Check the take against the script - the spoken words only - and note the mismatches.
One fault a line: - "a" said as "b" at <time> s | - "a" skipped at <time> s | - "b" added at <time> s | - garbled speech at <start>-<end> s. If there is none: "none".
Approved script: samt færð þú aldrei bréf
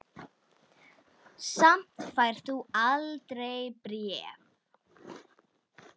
none